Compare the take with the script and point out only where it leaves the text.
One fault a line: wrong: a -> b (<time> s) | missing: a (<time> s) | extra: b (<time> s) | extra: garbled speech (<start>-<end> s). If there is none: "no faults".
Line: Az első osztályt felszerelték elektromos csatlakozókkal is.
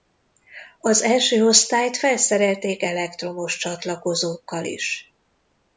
no faults